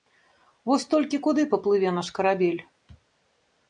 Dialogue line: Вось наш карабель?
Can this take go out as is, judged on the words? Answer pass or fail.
fail